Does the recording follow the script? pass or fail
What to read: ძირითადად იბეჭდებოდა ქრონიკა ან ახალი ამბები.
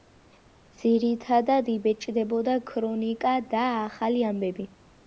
fail